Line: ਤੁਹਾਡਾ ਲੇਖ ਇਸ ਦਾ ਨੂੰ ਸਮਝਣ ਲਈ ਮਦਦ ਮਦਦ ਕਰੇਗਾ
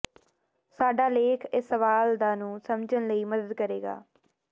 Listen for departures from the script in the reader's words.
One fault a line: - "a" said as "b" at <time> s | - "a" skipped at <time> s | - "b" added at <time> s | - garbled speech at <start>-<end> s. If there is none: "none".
- "ਤੁਹਾਡਾ" said as "ਸਾਡਾ" at 0.8 s
- "ਸਵਾਲ" added at 1.7 s
- "ਮਦਦ" skipped at 3.5 s